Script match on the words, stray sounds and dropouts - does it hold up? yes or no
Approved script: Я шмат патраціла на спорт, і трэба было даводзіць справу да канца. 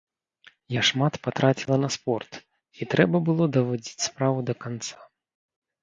yes